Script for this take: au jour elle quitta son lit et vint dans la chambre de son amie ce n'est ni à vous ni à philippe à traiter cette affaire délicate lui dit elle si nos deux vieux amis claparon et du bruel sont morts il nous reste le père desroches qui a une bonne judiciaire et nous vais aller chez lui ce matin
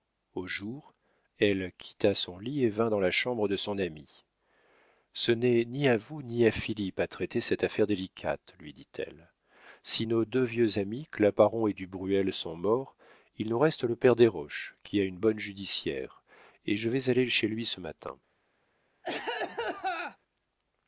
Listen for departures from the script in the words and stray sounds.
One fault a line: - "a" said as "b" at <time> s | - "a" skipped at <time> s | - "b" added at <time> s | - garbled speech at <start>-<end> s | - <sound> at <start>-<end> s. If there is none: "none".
- "nous" said as "je" at 16.8 s
- cough at 19.0-20.2 s